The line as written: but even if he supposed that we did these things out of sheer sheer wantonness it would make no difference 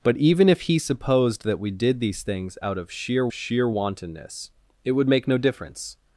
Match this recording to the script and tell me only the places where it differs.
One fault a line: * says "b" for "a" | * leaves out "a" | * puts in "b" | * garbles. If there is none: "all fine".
all fine